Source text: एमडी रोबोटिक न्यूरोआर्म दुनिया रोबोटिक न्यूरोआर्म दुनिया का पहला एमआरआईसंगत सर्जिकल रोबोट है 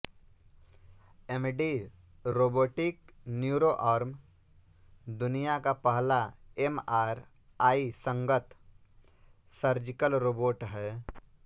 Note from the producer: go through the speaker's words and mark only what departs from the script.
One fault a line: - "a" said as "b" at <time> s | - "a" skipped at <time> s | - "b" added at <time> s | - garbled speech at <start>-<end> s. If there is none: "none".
- "रोबोटिक न्यूरोआर्म दुनिया" skipped at 5.6 s